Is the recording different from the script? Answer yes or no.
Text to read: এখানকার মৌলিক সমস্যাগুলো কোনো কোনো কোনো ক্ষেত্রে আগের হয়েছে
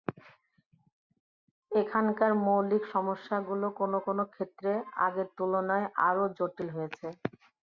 yes